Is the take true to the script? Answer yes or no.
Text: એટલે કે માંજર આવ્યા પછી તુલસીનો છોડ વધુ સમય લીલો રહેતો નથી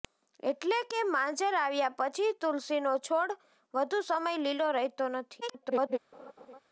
no